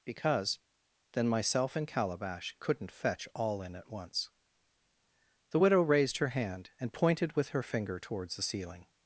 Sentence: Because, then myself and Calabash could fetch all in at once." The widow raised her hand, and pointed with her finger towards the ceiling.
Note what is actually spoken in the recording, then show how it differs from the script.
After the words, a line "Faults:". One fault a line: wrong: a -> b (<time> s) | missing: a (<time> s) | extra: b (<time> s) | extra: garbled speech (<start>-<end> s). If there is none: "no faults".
Because, then myself and Calabash couldn't fetch all in at once." The widow raised her hand, and pointed with her finger towards the ceiling.
Faults:
wrong: could -> couldn't (2.6 s)